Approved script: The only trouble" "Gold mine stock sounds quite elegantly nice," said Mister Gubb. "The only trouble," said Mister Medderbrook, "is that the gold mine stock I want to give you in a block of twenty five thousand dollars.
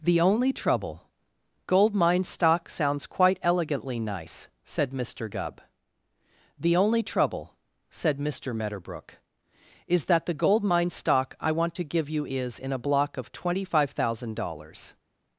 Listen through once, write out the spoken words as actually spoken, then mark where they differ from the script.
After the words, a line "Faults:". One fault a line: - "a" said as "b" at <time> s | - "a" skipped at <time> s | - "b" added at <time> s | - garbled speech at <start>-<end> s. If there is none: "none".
The only trouble" "Gold mine stock sounds quite elegantly nice," said Mister Gubb. "The only trouble," said Mister Medderbrook, "is that the gold mine stock I want to give you is in a block of twenty five thousand dollars.
Faults:
- "is" added at 12.3 s